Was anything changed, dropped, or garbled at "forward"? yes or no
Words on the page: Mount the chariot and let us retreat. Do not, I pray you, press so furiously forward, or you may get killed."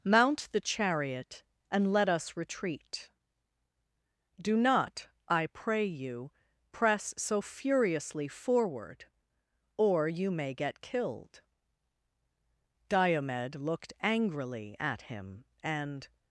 no